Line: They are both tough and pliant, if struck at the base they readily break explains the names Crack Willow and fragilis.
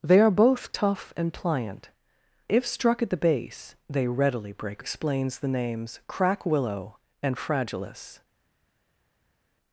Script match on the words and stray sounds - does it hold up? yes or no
yes